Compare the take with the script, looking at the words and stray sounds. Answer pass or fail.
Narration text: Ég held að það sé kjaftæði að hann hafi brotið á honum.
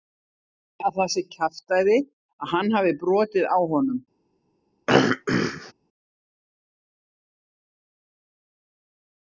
fail